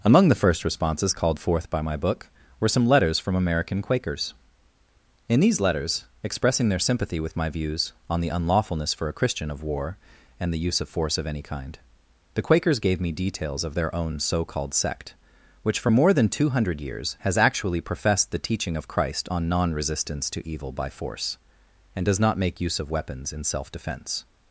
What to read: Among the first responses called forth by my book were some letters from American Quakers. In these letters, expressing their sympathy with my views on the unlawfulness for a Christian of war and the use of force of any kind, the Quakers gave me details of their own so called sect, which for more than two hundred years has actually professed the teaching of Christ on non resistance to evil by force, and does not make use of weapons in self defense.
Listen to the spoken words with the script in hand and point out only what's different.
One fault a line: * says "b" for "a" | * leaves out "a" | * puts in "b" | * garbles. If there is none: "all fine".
all fine